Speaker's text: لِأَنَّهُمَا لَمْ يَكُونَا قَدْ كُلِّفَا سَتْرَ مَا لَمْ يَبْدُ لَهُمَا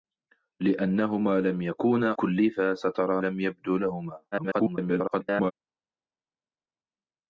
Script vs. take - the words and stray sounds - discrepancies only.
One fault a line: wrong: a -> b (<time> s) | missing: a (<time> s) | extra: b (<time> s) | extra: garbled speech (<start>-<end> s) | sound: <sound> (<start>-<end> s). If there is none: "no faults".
missing: قَدْ (2.1 s)
missing: مَا (3.2 s)
extra: garbled speech (4.3-5.5 s)